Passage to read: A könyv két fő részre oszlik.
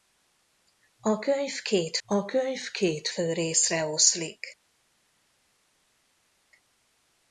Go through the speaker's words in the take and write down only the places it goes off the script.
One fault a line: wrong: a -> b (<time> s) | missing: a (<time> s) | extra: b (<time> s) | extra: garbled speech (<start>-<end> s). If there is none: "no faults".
extra: a könyv két (2.0 s)